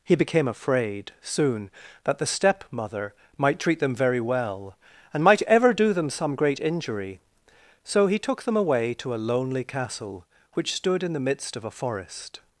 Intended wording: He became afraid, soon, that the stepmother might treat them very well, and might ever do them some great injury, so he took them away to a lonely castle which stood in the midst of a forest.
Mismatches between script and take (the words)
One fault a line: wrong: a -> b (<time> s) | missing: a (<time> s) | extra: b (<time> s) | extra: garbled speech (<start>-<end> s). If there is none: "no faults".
no faults